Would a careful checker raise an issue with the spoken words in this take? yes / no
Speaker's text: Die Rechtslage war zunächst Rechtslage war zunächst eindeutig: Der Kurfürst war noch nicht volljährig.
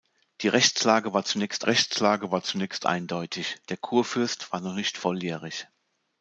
no